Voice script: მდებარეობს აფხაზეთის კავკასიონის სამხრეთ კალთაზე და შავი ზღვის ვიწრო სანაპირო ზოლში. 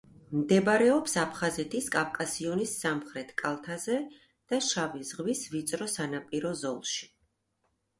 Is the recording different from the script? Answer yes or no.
no